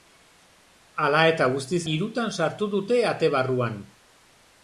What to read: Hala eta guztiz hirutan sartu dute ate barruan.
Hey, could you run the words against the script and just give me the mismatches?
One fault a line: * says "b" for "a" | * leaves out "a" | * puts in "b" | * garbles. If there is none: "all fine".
all fine